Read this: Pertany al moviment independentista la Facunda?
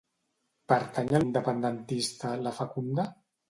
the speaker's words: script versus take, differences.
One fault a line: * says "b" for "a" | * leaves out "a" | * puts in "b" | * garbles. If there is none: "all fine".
* leaves out "moviment"